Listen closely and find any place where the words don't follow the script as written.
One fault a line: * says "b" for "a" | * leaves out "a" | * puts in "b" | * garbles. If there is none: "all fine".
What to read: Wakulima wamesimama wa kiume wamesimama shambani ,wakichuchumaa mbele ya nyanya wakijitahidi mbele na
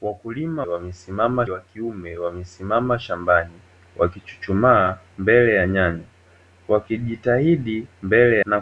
all fine